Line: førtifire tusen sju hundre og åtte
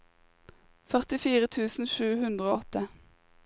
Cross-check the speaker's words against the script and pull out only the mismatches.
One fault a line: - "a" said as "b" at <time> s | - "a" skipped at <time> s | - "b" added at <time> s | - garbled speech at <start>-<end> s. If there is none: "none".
none